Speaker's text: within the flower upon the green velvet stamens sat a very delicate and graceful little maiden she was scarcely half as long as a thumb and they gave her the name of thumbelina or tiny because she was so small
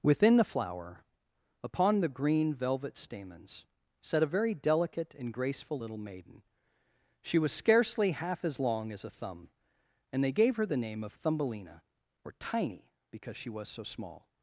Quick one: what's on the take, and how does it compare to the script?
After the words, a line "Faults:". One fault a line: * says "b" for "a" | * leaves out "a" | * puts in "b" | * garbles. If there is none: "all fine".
within the flower upon the green velvet stamens sat a very delicate and graceful little maiden she was scarcely half as long as a thumb and they gave her the name of thumbelina or tiny because she was so small
Faults:
all fine